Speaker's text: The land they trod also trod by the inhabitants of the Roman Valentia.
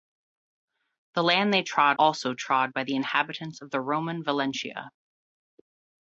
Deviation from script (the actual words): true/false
false